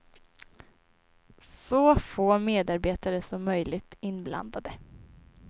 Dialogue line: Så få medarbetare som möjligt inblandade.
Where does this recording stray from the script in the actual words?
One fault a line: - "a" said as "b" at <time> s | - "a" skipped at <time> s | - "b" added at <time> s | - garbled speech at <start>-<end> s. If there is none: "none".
none